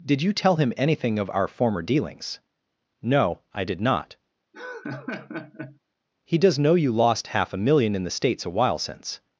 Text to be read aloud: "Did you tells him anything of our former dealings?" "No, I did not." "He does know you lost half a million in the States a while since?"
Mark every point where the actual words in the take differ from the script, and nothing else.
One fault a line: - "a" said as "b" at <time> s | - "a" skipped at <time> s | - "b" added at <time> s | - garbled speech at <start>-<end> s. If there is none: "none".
- "tells" said as "tell" at 0.3 s